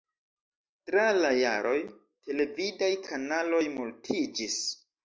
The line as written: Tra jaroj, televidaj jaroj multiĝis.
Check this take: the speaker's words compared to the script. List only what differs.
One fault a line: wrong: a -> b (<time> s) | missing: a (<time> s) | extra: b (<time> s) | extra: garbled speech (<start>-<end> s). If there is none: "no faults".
extra: la (1.2 s)
wrong: jaroj -> kanaloj (3.1 s)